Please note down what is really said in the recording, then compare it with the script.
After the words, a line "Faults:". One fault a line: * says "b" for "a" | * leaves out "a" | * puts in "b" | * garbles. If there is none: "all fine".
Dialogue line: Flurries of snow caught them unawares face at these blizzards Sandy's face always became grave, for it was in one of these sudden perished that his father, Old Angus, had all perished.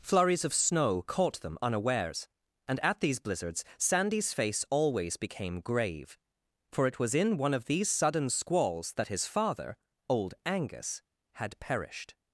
Flurries of snow caught them unawares and at these blizzards Sandy's face always became grave, for it was in one of these sudden squalls that his father, Old Angus, had perished.
Faults:
* says "and" for "face"
* says "squalls" for "perished"
* leaves out "all"